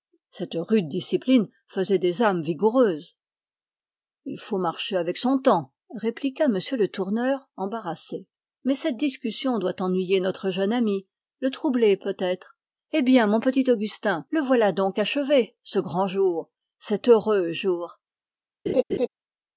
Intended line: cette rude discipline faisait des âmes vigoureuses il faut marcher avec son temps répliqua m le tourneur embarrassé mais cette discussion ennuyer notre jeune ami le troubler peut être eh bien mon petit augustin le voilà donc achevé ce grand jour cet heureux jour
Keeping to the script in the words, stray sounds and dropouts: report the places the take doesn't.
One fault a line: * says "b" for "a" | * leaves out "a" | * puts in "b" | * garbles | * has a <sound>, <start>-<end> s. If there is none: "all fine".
* puts in "doit"
* has a laugh, 18.7-19.1 s